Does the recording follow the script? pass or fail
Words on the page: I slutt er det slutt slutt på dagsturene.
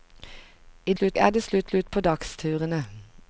pass